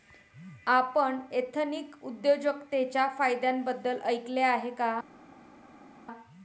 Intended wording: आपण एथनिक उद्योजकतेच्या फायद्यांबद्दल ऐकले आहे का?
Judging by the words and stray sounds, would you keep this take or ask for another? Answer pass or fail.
pass